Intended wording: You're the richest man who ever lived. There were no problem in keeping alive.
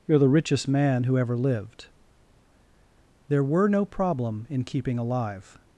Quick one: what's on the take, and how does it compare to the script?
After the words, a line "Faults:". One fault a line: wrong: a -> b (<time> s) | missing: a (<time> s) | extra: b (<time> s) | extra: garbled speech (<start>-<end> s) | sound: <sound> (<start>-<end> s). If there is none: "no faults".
You're the richest man who ever lived. There were no problem in keeping alive.
Faults:
no faults